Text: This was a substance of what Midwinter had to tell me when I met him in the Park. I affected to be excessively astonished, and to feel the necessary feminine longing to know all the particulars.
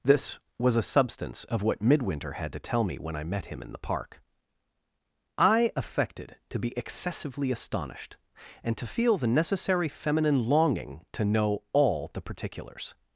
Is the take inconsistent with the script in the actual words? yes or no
no